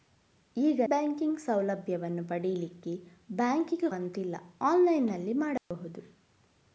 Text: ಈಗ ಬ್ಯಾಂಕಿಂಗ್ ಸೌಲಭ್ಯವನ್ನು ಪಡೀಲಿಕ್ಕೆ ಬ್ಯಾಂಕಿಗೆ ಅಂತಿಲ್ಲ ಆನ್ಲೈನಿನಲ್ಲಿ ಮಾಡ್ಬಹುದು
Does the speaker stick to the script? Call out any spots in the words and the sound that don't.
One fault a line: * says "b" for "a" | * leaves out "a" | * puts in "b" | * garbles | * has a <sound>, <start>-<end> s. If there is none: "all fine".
* has a dropout, 5.6-5.7 s